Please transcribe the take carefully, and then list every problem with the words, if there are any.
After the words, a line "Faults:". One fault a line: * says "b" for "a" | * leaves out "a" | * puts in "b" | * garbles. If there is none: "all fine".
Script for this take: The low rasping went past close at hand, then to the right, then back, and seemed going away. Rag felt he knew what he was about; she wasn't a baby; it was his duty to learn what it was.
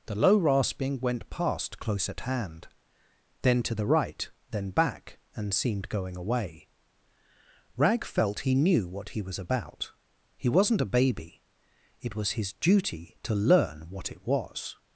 The low rasping went past close at hand, then to the right, then back, and seemed going away. Rag felt he knew what he was about; he wasn't a baby; it was his duty to learn what it was.
Faults:
* says "he" for "she"